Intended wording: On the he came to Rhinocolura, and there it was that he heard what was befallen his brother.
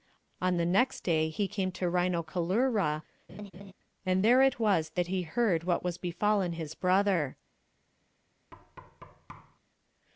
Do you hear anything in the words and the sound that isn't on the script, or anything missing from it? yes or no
yes